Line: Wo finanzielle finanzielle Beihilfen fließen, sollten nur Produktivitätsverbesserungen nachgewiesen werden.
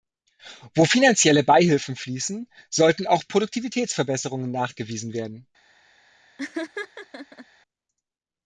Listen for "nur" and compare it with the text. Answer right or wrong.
wrong